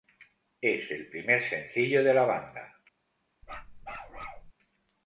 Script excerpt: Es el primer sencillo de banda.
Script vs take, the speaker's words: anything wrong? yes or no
yes